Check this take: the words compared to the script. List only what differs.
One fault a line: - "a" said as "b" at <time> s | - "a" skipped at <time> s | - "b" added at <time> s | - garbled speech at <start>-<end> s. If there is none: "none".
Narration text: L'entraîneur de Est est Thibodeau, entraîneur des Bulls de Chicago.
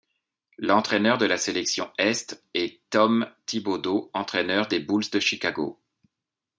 - "la sélection" added at 1.3 s
- "Tom" added at 2.9 s